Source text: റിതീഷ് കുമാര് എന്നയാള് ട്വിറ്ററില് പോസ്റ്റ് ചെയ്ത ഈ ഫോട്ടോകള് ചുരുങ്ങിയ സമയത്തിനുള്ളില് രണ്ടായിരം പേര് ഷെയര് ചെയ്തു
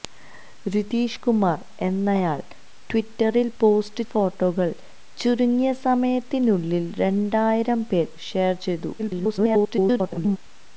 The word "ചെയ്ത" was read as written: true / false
false